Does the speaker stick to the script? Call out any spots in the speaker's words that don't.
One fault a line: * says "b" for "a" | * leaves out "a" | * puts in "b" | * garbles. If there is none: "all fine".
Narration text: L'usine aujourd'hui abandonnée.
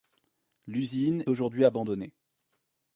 all fine